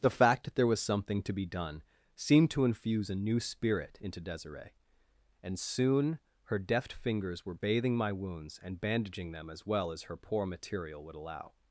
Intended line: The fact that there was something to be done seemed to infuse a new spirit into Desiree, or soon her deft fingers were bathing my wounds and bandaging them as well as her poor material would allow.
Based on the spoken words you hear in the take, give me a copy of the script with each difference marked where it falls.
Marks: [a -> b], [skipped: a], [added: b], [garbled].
The fact that there was something to be done seemed to infuse a new spirit into Desiree, [or -> and] soon her deft fingers were bathing my wounds and bandaging them as well as her poor material would allow.